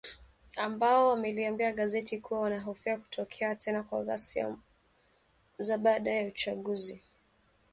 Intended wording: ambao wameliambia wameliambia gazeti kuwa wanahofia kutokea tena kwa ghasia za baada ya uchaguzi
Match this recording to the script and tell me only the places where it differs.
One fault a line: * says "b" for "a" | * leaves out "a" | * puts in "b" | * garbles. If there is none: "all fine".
* leaves out "wameliambia"